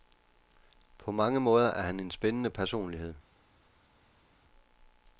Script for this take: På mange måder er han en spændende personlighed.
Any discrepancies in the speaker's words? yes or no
no